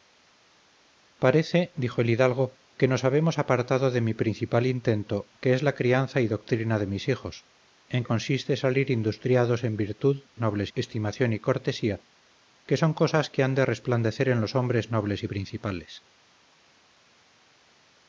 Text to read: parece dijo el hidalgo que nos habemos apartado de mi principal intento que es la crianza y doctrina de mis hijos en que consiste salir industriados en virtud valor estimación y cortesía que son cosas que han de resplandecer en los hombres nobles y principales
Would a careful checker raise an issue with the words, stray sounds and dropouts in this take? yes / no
yes